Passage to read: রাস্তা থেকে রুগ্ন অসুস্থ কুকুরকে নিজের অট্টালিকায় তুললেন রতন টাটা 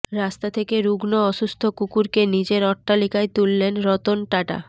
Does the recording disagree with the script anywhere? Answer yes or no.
no